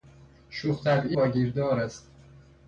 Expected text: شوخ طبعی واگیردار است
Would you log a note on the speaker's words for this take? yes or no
no